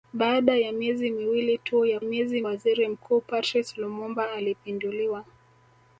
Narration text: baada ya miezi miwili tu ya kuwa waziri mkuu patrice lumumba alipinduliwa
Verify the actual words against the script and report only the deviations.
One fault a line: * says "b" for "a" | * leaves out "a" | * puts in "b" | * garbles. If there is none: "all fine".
* says "miezi" for "kuwa"